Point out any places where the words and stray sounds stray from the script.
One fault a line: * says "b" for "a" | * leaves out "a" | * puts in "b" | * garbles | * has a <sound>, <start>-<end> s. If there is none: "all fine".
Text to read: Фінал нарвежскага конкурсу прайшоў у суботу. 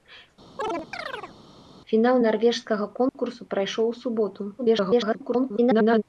* has a chirp, 0.6-1.4 s
* has a dropout, 3.1-3.1 s
* garbles